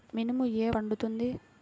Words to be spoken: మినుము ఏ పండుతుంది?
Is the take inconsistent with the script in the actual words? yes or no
no